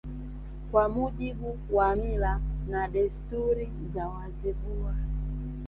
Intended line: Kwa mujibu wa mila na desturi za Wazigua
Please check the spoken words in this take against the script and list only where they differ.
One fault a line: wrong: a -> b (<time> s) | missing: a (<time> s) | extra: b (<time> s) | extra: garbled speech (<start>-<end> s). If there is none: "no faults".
no faults